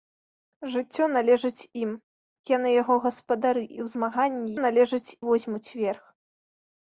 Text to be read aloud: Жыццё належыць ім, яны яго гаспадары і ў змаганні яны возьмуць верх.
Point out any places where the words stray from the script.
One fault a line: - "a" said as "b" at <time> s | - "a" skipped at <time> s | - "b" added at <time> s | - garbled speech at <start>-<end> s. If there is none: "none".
- "яны" said as "належыць" at 4.7 s